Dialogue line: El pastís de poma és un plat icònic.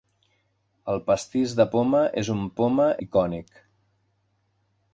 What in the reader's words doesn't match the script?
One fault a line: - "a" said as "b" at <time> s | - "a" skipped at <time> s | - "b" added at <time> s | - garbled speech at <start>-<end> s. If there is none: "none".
- "plat" said as "poma" at 2.6 s